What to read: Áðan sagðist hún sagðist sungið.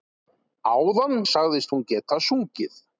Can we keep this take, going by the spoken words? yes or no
no